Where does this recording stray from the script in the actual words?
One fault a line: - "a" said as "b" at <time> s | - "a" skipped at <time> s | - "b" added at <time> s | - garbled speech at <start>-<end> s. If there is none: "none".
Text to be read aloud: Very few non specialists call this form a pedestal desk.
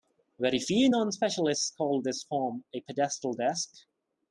none